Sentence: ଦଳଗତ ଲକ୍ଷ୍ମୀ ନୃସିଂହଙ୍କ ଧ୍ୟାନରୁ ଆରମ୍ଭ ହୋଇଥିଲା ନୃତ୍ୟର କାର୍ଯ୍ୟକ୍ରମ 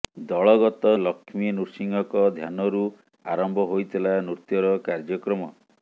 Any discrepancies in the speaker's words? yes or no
no